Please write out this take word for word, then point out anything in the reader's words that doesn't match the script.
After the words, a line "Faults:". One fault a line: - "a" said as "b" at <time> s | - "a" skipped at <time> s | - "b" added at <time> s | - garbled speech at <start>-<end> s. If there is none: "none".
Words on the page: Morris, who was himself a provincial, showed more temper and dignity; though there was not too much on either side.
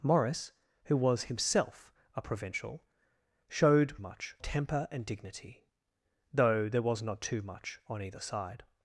Morris, who was himself a provincial, showed much temper and dignity; though there was not too much on either side.
Faults:
- "more" said as "much" at 4.0 s